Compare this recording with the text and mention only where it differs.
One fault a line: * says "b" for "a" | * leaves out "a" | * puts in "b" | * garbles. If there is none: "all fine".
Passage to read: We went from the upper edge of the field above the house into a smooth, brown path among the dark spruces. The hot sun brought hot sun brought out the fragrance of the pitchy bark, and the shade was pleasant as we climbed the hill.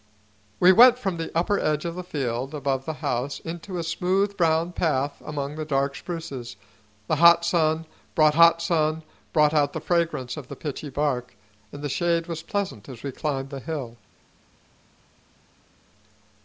all fine